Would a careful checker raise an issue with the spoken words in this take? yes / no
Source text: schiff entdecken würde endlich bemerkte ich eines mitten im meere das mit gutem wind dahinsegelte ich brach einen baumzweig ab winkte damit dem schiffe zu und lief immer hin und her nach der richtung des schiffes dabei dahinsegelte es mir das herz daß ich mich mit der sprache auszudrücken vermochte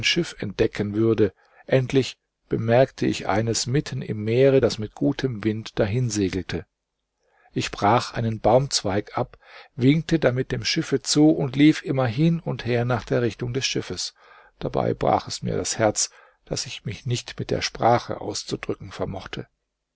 yes